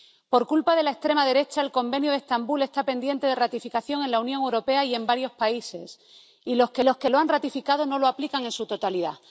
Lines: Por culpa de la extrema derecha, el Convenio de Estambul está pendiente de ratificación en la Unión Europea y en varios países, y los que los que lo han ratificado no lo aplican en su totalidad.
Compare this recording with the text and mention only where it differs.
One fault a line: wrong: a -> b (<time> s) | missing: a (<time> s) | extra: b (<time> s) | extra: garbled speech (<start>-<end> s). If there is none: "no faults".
no faults